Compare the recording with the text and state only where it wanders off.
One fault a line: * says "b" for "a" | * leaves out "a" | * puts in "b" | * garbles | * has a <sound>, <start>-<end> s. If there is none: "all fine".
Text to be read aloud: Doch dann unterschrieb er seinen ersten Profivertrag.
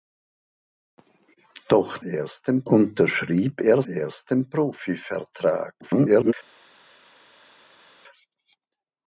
* says "ersten" for "dann"
* leaves out "seinen"
* garbles